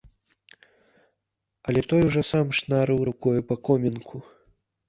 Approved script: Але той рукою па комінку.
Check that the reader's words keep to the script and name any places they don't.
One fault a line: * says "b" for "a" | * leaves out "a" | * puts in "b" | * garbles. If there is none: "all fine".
* puts in "ужо сам шнарыў"